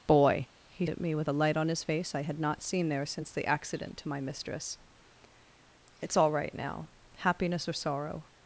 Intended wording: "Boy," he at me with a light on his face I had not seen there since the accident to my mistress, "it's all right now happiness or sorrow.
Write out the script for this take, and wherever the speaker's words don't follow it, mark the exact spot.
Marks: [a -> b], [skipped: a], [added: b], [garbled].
"Boy," he at me with a light on his face I had not seen there since the accident to my mistress, "it's all right now happiness or sorrow.